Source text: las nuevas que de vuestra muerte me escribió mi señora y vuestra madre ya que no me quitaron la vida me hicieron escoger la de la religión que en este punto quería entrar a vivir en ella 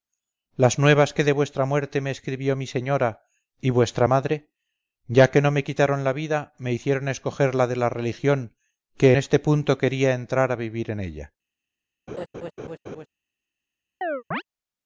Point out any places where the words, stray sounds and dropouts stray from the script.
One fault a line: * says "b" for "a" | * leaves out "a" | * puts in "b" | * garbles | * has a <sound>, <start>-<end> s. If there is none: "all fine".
* leaves out "en"
* has a laugh, 12.1-13.1 s
* has a chirp, 14.0-14.4 s